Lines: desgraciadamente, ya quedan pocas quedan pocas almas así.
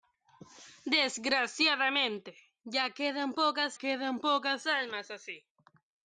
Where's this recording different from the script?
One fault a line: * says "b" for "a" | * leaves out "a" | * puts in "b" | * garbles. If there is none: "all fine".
all fine